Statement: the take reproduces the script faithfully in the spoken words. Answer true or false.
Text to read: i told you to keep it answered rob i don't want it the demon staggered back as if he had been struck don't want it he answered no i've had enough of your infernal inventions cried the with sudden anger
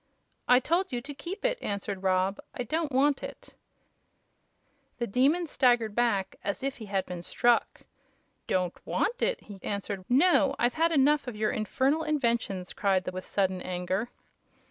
true